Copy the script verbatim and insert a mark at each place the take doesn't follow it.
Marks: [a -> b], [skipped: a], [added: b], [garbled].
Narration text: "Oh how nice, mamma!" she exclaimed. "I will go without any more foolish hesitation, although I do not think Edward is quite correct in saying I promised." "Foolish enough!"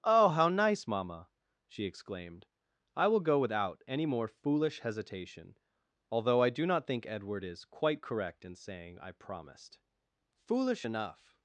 "Oh how nice, mamma!" she exclaimed. "I will go without any more foolish hesitation, although I do not think Edward is quite correct in saying I promised." "Foolish enough!"